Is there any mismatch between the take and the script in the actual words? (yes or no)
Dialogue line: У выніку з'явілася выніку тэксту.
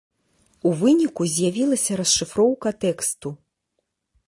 yes